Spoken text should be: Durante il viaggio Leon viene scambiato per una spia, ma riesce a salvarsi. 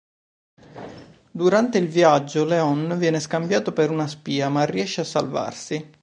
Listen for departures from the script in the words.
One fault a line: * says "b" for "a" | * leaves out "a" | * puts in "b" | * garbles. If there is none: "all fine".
all fine